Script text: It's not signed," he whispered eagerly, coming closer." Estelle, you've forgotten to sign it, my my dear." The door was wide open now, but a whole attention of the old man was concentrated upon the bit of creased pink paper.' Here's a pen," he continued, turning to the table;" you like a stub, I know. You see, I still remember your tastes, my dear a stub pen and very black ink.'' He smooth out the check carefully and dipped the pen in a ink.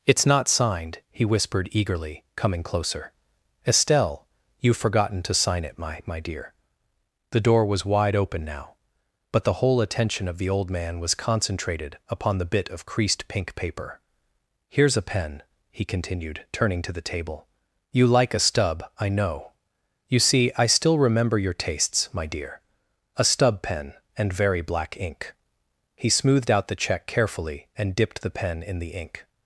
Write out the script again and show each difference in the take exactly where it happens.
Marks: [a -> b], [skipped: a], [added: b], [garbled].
It's not signed," he whispered eagerly, coming closer." Estelle, you've forgotten to sign it, my my dear." The door was wide open now, but [a -> the] whole attention of the old man was concentrated upon the bit of creased pink paper.' Here's a pen," he continued, turning to the table;" you like a stub, I know. You see, I still remember your tastes, my dear a stub pen and very black ink.'' He [smooth -> smoothed] out the check carefully and dipped the pen in [a -> the] ink.